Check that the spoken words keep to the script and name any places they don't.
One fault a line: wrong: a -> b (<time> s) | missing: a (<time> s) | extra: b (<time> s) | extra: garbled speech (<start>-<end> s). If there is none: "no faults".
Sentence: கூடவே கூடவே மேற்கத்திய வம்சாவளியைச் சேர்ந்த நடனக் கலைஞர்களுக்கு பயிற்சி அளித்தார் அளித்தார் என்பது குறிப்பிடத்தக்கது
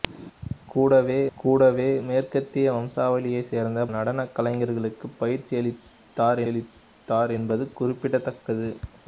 no faults